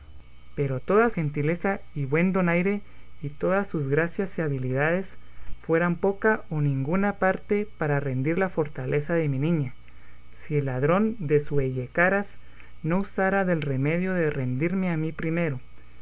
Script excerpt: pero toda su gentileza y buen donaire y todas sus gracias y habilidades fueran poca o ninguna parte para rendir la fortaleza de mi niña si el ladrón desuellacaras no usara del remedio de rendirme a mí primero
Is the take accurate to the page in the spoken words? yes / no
no